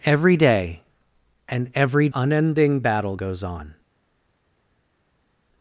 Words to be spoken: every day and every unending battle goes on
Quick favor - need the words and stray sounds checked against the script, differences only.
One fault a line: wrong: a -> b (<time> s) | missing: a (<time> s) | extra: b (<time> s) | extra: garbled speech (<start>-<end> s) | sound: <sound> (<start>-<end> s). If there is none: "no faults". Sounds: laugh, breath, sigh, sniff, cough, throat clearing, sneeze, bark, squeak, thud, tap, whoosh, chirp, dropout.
no faults